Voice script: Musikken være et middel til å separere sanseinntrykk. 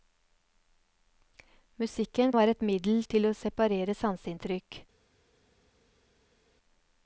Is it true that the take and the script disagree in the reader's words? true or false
false